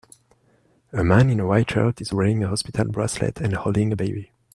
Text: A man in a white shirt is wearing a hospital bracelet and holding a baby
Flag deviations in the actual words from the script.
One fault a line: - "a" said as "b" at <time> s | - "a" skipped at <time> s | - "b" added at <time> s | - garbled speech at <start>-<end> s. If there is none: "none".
none